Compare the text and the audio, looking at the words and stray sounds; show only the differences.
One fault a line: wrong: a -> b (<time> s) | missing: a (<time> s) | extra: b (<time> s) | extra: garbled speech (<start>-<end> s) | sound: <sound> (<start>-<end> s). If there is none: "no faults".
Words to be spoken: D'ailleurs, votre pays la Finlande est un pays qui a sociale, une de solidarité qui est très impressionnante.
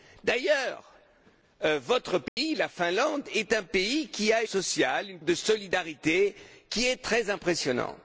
sound: dropout (2.3-2.4 s)